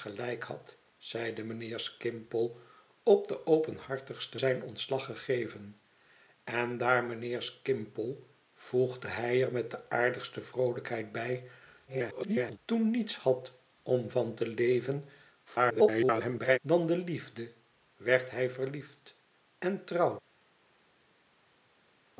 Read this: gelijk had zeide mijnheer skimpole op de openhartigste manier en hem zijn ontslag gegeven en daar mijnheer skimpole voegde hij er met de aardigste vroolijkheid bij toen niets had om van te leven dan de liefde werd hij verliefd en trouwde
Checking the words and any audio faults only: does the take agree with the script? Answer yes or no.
no